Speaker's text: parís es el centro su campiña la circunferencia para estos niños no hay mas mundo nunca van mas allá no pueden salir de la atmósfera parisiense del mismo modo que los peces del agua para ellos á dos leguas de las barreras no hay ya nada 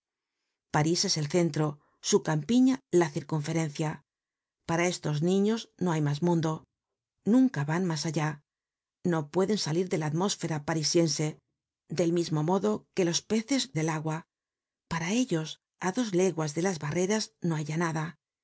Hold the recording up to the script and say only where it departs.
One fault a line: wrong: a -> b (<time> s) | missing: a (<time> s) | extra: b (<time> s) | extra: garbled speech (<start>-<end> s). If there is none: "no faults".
no faults